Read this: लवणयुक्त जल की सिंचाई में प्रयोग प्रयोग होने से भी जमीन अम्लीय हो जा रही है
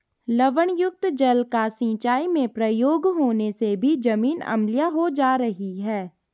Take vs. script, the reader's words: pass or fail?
fail